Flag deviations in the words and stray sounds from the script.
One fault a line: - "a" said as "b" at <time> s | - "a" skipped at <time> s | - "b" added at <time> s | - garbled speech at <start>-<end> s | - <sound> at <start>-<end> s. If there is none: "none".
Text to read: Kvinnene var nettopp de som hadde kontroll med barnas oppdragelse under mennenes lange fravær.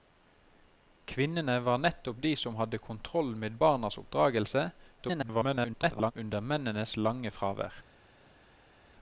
- garbled speech at 5.0-6.1 s